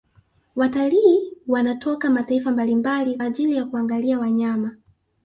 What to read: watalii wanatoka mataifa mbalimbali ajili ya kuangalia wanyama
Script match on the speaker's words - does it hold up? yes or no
yes